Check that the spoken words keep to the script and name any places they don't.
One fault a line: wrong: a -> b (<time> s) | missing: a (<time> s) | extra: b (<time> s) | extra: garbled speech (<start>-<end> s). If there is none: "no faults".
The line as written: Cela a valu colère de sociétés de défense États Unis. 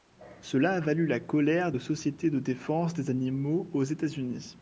extra: la (1.1 s)
extra: des animaux aux (2.9 s)